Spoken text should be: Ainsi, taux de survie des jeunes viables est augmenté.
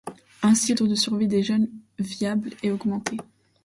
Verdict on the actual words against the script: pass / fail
pass